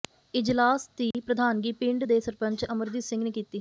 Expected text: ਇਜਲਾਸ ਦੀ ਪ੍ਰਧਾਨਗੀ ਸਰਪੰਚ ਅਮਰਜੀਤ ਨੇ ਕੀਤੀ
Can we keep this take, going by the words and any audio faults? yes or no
no